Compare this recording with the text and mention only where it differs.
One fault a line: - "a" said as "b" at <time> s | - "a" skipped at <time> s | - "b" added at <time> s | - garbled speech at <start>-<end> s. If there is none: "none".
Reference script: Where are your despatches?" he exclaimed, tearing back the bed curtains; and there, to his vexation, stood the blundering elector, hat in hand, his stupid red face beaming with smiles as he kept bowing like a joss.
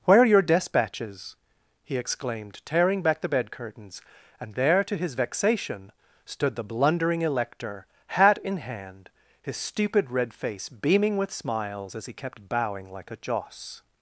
none